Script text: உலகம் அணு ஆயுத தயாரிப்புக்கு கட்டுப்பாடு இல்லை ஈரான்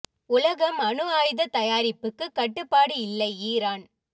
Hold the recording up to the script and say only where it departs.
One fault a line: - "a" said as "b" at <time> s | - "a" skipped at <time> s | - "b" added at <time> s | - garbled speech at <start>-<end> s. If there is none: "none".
none